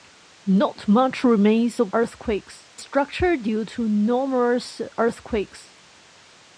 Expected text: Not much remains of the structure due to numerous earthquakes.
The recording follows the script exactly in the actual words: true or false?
false